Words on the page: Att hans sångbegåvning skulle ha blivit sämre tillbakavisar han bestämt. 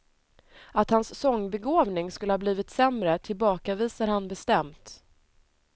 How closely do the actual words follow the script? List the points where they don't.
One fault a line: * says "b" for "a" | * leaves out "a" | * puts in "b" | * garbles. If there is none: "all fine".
all fine